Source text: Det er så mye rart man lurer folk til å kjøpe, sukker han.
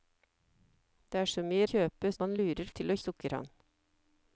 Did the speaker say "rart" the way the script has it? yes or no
no